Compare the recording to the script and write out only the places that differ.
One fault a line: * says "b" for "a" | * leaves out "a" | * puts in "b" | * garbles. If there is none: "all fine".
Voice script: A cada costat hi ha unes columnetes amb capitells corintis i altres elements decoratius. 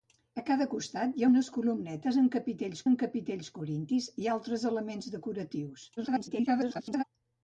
* puts in "amb capitells"
* garbles